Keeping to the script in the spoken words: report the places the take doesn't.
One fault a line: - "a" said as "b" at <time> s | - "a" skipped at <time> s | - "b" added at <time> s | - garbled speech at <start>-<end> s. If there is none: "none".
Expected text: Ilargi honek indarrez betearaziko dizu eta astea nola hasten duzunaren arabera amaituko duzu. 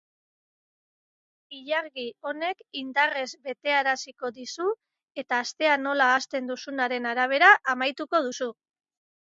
none